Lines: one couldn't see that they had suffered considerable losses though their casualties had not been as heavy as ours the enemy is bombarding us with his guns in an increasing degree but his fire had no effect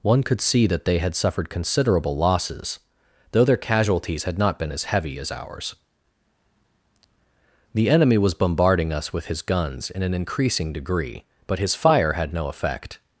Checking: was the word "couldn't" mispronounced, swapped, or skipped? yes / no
yes